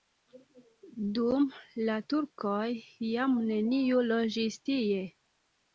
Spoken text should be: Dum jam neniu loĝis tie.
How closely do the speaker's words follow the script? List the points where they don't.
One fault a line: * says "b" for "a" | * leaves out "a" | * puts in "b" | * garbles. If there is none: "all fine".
* puts in "la turkoj"